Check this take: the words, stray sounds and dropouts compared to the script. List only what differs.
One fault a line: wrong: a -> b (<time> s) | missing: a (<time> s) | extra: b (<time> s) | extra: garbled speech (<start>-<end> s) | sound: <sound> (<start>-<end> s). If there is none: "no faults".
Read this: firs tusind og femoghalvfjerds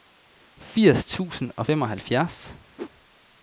sound: whoosh (2.8-2.9 s)